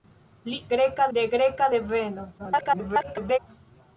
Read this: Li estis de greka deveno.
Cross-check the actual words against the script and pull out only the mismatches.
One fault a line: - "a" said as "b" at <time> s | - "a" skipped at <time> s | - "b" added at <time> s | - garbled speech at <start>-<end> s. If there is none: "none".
- "estis" said as "greka" at 0.8 s
- garbled speech at 2.4-3.4 s